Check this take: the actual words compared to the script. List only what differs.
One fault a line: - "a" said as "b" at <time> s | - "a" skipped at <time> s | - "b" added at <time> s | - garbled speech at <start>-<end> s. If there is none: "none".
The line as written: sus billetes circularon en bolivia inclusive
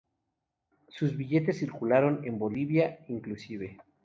none